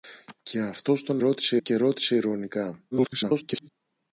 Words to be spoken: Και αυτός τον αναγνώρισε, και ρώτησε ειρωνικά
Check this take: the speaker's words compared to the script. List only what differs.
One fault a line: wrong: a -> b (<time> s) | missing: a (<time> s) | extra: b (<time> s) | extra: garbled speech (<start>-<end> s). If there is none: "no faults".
wrong: αναγνώρισε -> ρώτησε (1.2 s)
extra: garbled speech (2.9-3.7 s)